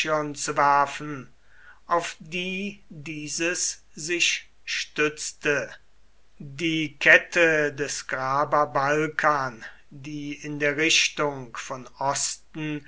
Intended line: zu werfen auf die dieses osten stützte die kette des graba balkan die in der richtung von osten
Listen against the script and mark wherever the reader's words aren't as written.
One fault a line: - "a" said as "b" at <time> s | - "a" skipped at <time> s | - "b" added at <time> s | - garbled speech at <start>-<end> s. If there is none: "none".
- "osten" said as "sich" at 3.9 s